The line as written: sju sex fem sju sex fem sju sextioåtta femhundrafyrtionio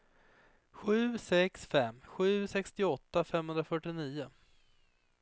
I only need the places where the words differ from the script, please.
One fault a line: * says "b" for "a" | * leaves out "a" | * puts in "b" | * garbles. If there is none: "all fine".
* leaves out "sex fem sju"